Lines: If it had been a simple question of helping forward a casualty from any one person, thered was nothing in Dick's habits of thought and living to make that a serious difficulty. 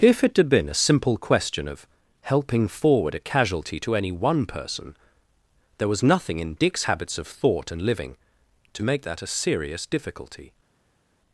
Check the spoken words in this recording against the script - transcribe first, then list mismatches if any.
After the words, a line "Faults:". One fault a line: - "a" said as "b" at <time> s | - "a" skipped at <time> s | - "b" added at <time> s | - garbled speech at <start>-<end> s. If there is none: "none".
If it had been a simple question of helping forward a casualty to any one person, there was nothing in Dick's habits of thought and living to make that a serious difficulty.
Faults:
- "from" said as "to" at 3.8 s
- "thered" said as "there" at 5.8 s